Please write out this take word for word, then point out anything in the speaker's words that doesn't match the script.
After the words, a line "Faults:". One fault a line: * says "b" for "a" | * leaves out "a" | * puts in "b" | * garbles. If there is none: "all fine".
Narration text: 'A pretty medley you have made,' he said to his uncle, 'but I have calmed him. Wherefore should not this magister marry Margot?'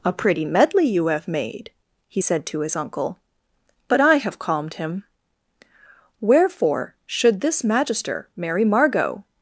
'A pretty medley you have made,' he said to his uncle, 'but I have calmed him. Wherefore should this magister marry Margot?'
Faults:
* leaves out "not"